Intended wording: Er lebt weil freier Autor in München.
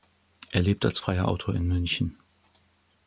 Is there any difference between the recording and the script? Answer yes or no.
yes